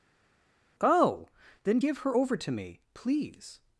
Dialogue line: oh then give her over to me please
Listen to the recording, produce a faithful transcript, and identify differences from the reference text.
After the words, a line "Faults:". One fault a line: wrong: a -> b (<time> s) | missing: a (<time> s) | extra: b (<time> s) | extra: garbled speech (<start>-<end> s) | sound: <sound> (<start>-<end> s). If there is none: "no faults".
oh then give her over to me please
Faults:
no faults